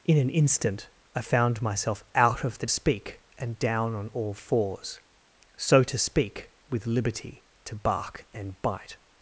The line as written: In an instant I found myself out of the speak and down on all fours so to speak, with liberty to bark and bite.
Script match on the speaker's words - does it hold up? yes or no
yes